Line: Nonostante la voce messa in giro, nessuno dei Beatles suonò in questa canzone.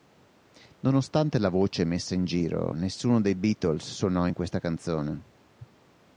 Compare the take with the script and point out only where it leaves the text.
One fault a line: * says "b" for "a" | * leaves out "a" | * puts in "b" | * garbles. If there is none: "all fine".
all fine